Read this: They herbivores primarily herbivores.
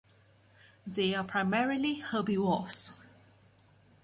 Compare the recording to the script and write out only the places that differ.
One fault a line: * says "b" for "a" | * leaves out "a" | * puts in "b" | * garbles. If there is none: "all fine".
* says "are" for "herbivores"